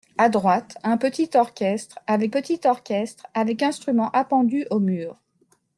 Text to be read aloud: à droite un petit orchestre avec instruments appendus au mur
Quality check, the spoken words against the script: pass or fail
fail